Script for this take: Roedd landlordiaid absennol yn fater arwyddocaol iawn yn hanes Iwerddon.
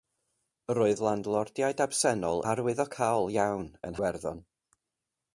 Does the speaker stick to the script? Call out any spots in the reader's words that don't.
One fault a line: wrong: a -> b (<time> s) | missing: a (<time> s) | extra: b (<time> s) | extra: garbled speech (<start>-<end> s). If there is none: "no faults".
missing: yn fater (2.4 s)
missing: hanes (4.0 s)